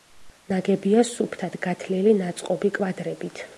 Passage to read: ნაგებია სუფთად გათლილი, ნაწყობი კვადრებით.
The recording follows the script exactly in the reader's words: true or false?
true